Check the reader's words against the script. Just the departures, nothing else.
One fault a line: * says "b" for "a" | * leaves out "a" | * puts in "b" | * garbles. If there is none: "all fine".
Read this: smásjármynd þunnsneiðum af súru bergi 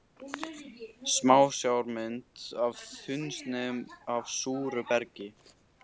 * puts in "af"